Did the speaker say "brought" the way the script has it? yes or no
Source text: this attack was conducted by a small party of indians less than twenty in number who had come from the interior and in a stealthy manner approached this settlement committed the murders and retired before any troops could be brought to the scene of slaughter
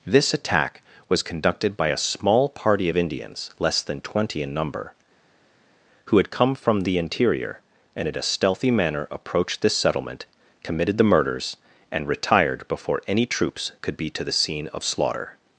no